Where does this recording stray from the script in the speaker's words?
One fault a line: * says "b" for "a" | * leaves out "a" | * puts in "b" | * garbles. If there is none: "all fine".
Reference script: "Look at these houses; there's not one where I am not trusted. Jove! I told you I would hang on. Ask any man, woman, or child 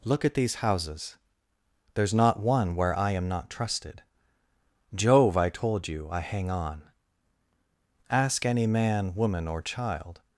* leaves out "would"